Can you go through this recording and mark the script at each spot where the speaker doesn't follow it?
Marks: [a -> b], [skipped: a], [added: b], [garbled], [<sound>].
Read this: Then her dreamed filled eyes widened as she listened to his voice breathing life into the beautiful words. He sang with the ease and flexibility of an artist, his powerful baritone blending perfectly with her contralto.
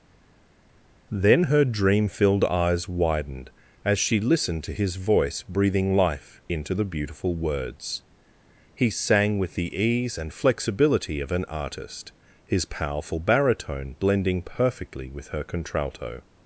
Then her [dreamed -> dream] filled eyes widened as she listened to his voice breathing life into the beautiful words. He sang with the ease and flexibility of an artist, his powerful baritone blending perfectly with her contralto.